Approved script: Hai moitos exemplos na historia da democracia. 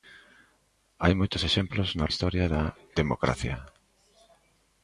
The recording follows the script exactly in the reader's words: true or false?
true